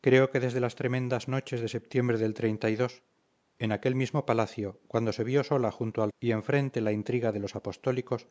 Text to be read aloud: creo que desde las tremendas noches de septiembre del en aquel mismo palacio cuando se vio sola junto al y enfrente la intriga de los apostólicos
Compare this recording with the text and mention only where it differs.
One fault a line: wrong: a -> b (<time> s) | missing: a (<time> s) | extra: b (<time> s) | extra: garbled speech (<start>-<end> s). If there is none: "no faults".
no faults